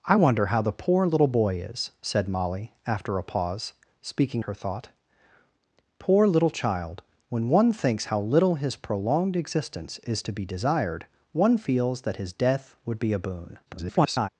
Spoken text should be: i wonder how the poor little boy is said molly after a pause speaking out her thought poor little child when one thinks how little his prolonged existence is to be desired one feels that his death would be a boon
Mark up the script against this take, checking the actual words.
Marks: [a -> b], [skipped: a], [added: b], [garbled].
i wonder how the poor little boy is said molly after a pause speaking [skipped: out] her thought poor little child when one thinks how little his prolonged existence is to be desired one feels that his death would be a boon [garbled]